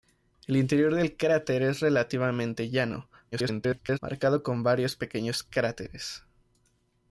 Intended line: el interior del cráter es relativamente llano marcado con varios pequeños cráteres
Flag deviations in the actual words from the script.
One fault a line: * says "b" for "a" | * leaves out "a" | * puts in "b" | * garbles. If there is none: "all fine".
* garbles